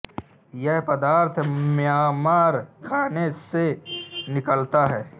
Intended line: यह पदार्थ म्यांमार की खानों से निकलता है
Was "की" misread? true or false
true